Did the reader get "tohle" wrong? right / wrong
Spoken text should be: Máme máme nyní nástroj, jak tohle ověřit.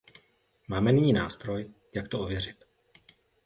wrong